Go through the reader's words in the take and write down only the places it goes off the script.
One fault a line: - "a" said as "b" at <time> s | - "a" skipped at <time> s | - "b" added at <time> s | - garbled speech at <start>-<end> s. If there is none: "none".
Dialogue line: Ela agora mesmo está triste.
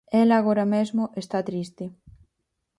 none